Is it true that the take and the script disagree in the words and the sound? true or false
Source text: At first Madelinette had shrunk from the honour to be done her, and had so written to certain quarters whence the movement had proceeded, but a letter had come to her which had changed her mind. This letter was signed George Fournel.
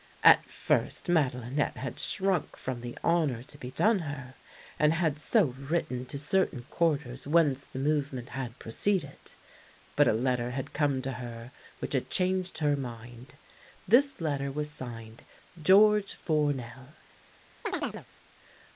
true